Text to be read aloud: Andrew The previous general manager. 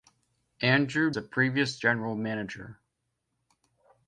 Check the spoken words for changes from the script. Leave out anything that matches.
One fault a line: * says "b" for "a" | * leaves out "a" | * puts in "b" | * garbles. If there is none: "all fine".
all fine